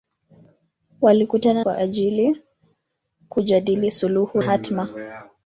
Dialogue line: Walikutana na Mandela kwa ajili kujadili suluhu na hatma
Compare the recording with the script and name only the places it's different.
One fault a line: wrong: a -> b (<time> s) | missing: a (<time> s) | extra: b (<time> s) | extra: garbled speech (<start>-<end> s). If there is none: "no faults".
missing: na Mandela (1.6 s)
missing: na (4.4 s)